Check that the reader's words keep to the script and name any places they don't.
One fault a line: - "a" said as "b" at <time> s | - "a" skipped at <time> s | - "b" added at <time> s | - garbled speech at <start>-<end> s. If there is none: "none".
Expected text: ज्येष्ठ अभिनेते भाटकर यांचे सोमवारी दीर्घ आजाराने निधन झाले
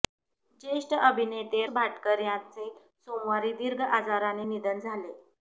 none